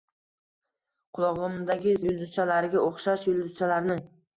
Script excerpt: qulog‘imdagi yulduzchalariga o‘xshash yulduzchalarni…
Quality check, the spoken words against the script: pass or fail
pass